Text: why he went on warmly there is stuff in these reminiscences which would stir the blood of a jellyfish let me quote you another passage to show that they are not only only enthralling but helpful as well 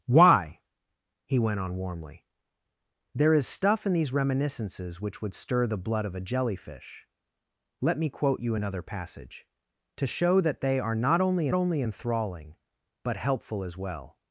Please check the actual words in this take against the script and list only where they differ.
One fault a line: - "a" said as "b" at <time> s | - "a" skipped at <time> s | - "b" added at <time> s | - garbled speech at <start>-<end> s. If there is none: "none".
none